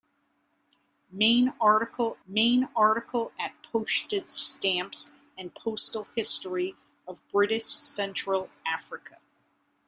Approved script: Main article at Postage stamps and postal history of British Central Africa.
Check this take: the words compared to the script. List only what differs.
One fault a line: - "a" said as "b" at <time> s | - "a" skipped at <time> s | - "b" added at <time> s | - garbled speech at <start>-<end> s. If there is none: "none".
- "main article" added at 2.3 s